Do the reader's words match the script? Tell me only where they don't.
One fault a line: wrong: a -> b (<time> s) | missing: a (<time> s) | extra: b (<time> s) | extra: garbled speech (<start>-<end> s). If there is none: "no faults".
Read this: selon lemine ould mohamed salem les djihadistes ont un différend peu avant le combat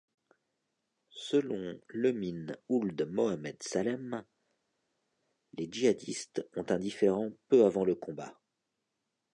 no faults